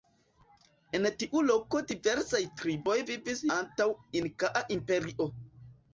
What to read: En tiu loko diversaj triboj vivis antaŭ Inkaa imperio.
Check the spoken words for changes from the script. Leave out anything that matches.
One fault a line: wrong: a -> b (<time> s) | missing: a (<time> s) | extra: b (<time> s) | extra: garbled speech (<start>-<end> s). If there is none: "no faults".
no faults